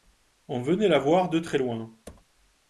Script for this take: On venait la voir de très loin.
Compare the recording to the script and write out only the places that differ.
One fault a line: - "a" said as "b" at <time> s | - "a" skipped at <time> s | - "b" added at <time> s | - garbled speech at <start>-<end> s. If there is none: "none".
none